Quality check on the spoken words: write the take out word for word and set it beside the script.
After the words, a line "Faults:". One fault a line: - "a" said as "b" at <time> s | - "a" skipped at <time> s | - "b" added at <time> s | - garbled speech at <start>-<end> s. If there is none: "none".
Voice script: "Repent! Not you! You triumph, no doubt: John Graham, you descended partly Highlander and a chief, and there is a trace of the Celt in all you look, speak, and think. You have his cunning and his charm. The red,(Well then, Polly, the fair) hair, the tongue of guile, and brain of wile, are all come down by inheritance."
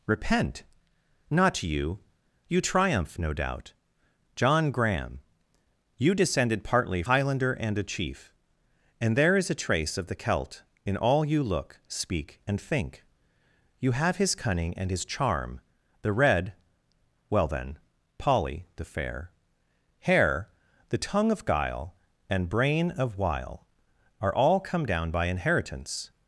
"Repent! Not you! You triumph, no doubt: John Graham, you descended partly Highlander and a chief, and there is a trace of the Celt in all you look, speak, and think. You have his cunning and his charm. The red,(Well then, Polly, the fair) hair, the tongue of guile, and brain of wile, are all come down by inheritance."
Faults:
none